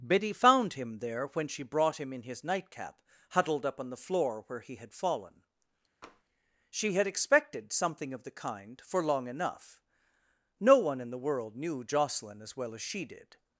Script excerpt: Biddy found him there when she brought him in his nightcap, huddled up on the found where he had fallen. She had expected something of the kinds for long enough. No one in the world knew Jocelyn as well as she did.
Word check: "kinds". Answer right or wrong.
wrong